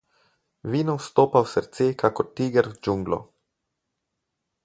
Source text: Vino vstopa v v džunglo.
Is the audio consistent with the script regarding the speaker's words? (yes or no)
no